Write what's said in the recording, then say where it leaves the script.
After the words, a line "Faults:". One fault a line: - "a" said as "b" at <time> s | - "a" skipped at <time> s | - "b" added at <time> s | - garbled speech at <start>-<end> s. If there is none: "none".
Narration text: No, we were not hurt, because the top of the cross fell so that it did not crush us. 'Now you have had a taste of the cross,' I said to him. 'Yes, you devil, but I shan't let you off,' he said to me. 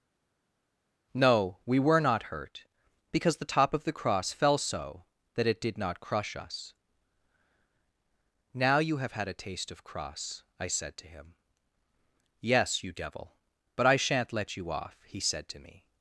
No, we were not hurt, because the top of the cross fell so that it did not crush us. 'Now you have had a taste of cross,' I said to him. 'Yes, you devil, but I shan't let you off,' he said to me.
Faults:
- "the" skipped at 9.8 s